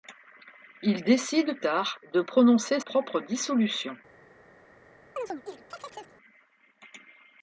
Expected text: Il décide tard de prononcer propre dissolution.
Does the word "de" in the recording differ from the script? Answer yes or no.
no